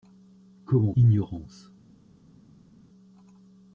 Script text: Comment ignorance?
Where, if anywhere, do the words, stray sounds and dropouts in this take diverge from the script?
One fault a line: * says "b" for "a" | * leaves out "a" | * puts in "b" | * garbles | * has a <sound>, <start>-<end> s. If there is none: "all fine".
all fine